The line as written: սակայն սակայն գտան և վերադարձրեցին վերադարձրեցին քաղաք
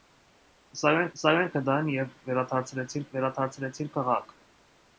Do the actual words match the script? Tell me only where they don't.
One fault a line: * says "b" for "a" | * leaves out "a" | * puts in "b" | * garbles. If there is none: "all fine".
all fine